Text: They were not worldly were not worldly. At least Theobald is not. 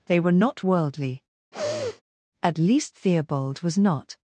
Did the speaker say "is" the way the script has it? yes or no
no